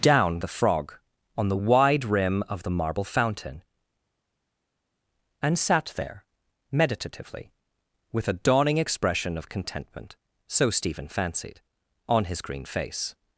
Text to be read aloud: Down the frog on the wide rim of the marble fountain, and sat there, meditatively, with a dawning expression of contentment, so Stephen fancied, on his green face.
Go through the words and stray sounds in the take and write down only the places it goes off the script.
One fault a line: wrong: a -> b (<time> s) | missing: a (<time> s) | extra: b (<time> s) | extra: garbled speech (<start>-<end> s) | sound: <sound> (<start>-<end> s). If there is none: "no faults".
no faults